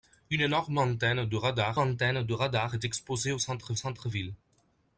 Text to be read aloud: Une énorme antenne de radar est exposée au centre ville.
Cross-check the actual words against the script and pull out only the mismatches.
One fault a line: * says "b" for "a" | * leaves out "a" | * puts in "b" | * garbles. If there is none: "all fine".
* puts in "antenne de radar"
* puts in "centre"